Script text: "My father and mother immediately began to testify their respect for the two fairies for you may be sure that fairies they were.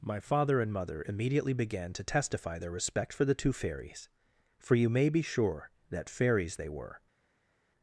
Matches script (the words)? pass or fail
pass